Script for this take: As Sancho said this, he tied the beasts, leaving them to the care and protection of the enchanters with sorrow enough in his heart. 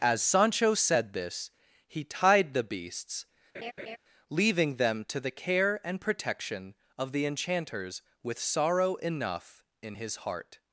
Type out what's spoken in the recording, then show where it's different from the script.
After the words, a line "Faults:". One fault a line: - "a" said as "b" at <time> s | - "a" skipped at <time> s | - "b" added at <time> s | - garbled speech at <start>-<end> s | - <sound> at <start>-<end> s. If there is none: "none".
As Sancho said this, he tied the beasts, leaving them to the care and protection of the enchanters with sorrow enough in his heart.
Faults:
- laugh at 3.5-4.0 s